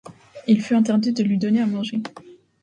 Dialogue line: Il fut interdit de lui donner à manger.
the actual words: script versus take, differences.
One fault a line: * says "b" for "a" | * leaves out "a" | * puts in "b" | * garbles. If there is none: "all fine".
all fine